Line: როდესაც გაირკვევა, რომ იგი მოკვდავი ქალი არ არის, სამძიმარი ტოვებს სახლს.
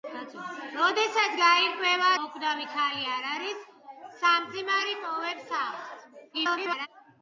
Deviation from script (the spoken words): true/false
true